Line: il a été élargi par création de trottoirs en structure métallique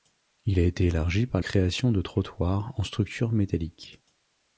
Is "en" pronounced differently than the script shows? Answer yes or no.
no